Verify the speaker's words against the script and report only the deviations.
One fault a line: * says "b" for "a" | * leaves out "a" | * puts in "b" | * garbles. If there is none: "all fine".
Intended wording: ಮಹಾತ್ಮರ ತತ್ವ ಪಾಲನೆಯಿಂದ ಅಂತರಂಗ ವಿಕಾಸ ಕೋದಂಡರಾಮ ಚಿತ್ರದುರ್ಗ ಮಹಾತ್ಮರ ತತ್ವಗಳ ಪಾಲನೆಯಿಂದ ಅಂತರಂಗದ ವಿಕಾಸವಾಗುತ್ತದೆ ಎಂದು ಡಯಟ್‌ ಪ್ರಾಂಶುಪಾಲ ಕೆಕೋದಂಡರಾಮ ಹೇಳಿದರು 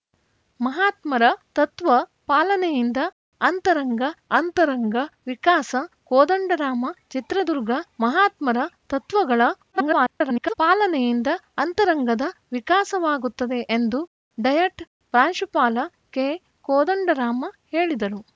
* puts in "ಅಂತರಂಗ"
* garbles